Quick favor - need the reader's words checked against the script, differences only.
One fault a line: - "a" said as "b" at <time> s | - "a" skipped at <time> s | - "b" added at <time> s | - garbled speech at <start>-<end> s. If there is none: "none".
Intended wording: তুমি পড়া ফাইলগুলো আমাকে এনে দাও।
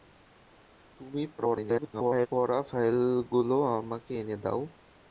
- garbled speech at 1.4-2.3 s